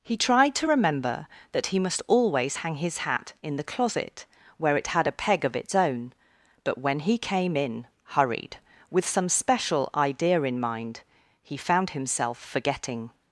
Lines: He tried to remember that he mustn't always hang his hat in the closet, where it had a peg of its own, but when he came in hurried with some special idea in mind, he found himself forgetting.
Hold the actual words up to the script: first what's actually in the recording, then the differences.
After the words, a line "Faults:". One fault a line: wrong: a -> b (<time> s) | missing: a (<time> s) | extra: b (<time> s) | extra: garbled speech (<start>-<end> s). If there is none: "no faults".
He tried to remember that he must always hang his hat in the closet, where it had a peg of its own, but when he came in hurried with some special idea in mind, he found himself forgetting.
Faults:
wrong: mustn't -> must (1.8 s)